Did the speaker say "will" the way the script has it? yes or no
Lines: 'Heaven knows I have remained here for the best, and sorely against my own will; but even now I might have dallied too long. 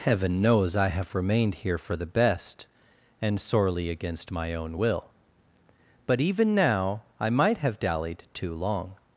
yes